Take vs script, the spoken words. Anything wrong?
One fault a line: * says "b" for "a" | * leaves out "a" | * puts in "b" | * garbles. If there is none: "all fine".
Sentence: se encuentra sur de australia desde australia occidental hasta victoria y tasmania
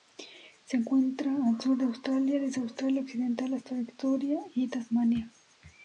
* puts in "al"